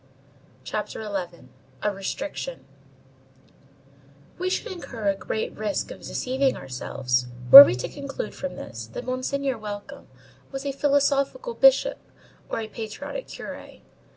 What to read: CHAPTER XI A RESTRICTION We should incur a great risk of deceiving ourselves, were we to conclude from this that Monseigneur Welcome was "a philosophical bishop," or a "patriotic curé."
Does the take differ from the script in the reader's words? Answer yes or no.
no